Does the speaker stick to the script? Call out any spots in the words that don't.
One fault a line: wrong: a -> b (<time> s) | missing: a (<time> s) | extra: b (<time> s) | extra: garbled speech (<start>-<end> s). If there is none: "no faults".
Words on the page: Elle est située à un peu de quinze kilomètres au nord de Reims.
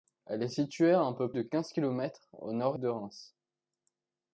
no faults